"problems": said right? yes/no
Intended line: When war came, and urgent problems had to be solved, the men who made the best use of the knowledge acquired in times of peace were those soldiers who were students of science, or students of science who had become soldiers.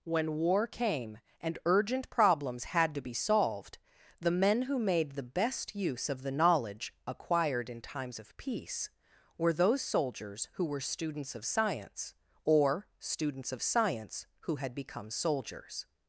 yes